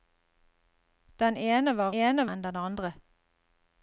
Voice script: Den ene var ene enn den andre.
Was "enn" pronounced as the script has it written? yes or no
yes